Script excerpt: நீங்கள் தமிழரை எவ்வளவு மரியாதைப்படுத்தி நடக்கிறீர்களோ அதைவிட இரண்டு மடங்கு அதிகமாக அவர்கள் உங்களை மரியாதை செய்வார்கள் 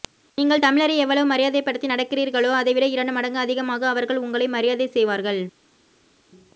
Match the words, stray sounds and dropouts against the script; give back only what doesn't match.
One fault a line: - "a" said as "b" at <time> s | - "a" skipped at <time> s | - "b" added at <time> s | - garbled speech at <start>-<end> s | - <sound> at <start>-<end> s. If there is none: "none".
none